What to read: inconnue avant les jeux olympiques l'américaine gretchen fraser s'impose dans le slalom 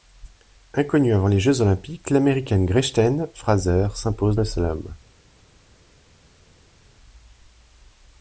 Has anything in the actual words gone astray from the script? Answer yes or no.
yes